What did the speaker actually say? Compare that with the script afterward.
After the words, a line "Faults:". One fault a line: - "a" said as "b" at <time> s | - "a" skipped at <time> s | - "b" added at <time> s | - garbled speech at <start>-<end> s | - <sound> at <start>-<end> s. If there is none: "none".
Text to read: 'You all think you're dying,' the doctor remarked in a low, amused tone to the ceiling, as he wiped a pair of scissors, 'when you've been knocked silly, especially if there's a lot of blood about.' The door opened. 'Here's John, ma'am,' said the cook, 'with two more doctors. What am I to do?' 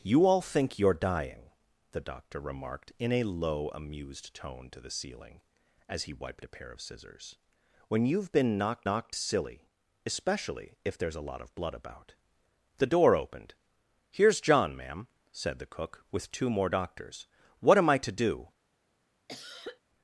'You all think you're dying,' the doctor remarked in a low, amused tone to the ceiling, as he wiped a pair of scissors, 'when you've been knocked knocked silly, especially if there's a lot of blood about.' The door opened. 'Here's John, ma'am,' said the cook, 'with two more doctors. What am I to do?'
Faults:
- "knocked" added at 8.8 s
- cough at 19.3-19.8 s